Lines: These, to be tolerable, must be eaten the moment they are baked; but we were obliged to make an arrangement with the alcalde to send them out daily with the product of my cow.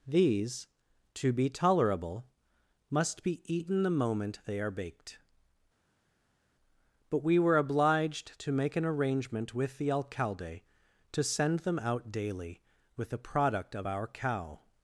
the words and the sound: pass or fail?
fail